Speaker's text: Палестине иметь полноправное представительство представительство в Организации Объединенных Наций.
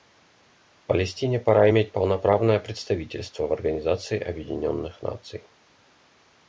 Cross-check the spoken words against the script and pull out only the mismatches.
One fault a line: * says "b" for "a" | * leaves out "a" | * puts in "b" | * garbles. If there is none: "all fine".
* puts in "пора"
* leaves out "представительство"